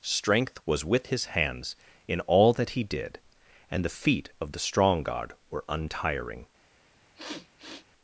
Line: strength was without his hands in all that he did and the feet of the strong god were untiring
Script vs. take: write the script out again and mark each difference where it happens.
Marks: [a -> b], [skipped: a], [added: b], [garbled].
strength was [without -> with] his hands in all that he did and the feet of the strong god were untiring